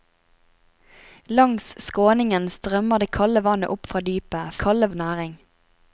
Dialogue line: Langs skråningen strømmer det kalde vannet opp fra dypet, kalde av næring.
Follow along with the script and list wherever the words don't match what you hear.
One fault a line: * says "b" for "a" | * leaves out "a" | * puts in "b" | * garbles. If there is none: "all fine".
all fine